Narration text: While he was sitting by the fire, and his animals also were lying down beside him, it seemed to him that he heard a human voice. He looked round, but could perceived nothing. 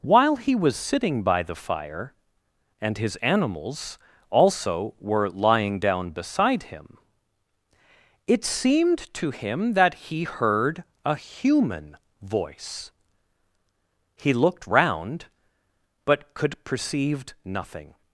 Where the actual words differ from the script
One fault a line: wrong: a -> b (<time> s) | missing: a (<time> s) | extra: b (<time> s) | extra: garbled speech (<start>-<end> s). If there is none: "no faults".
wrong: perceived -> perceive (16.6 s)